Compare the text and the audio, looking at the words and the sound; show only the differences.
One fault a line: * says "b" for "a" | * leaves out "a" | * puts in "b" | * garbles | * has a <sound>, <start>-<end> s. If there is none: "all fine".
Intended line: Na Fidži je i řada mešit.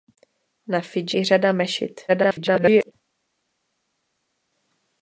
* leaves out "je"
* garbles